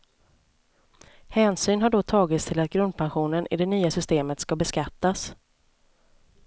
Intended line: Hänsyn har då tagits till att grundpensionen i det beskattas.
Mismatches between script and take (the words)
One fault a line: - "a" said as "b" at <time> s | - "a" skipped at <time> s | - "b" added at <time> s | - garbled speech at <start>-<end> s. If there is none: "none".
- "nya systemet ska" added at 3.6 s